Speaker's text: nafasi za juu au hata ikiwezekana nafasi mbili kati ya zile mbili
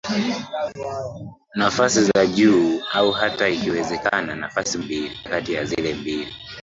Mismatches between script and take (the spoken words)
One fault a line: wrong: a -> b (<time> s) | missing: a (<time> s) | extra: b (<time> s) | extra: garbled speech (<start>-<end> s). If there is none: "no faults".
no faults